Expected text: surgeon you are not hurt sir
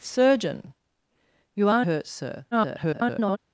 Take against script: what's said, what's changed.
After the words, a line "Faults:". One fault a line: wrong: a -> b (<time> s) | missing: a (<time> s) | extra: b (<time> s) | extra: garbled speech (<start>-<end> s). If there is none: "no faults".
surgeon you are hurt sir [garbled]
Faults:
missing: not (1.8 s)
extra: garbled speech (2.5-3.4 s)